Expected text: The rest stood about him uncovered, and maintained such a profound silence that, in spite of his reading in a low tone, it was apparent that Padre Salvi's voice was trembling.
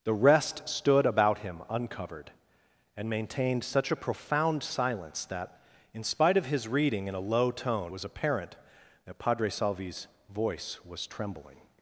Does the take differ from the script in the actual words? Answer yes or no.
yes